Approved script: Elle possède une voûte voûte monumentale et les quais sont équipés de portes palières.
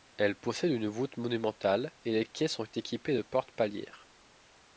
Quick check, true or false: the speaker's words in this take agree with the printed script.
false